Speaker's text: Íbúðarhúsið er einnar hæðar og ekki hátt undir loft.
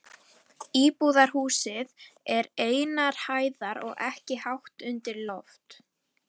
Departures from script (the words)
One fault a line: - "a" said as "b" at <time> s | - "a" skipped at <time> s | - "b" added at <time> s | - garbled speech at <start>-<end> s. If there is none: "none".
none